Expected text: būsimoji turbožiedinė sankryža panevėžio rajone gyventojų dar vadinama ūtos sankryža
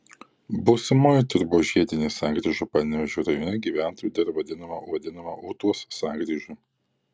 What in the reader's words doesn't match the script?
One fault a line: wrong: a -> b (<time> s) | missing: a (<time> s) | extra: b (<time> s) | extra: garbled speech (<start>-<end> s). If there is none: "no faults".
extra: vadinama (4.9 s)